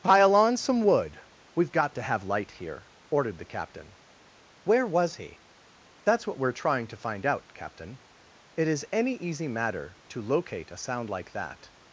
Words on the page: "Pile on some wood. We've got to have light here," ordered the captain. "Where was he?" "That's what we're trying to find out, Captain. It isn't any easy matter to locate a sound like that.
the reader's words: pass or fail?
fail